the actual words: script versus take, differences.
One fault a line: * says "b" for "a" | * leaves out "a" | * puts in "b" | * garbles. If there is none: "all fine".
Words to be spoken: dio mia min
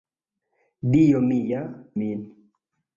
all fine